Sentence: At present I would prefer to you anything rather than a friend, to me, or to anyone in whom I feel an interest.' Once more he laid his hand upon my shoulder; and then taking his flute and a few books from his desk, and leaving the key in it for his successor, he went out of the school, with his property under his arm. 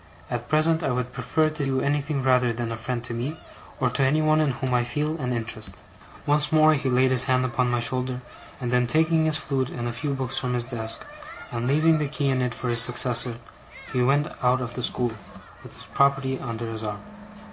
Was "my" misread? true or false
false